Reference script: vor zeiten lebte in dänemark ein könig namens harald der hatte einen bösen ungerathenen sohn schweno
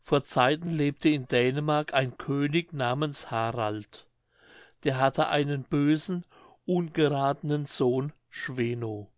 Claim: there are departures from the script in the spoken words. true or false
false